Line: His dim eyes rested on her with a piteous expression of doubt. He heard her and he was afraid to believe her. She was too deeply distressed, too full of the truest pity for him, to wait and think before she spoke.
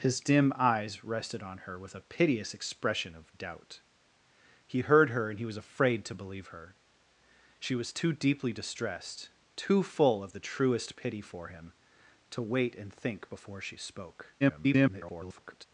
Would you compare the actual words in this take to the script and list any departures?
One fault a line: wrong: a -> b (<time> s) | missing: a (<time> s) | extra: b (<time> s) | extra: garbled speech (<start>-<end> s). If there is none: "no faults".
extra: garbled speech (14.4-15.7 s)